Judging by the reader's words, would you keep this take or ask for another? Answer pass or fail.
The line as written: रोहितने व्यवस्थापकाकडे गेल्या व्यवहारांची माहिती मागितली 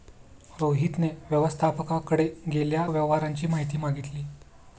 pass